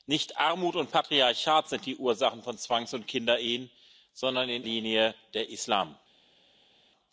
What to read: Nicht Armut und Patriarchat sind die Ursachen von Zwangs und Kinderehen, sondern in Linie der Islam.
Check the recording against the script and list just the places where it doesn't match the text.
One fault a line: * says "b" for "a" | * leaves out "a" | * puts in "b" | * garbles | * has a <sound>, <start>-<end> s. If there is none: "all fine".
all fine